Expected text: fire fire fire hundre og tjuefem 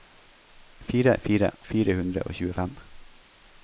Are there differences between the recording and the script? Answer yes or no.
no